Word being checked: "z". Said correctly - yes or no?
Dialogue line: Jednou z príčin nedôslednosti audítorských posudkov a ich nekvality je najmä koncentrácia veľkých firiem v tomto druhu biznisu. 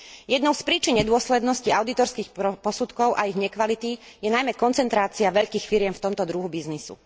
yes